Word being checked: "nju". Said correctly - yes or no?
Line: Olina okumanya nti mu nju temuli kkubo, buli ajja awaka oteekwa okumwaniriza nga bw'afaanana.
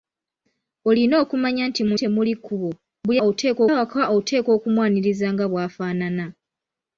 no